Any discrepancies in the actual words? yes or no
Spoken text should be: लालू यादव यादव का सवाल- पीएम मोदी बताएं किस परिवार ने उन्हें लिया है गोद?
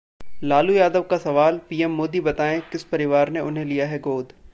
yes